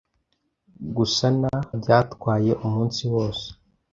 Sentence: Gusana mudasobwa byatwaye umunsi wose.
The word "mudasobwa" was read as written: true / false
false